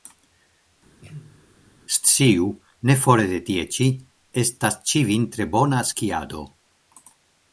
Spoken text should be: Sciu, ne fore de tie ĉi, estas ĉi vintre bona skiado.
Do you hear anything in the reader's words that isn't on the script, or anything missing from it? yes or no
no